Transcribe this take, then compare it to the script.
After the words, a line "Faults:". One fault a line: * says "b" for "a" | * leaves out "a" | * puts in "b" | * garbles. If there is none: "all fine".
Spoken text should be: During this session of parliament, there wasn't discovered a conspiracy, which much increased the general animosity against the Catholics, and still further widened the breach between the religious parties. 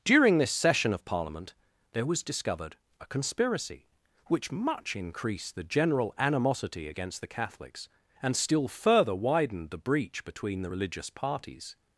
During this session of parliament, there was discovered a conspiracy, which much increased the general animosity against the Catholics, and still further widened the breach between the religious parties.
Faults:
* says "was" for "wasn't"